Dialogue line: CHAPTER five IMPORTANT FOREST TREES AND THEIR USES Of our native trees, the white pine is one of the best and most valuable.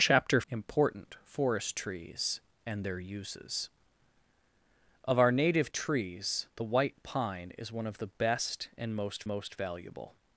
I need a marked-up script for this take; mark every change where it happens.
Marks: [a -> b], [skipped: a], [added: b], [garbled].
CHAPTER [skipped: five] IMPORTANT FOREST TREES AND THEIR USES Of our native trees, the white pine is one of the best and most [added: most] valuable.